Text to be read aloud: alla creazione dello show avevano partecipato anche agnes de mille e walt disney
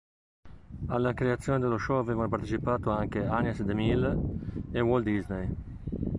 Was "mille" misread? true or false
false